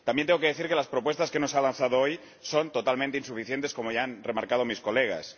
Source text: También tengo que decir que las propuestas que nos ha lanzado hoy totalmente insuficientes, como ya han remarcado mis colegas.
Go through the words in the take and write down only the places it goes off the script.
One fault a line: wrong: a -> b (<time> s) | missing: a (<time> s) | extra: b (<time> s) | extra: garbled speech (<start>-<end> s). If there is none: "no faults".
extra: son (2.4 s)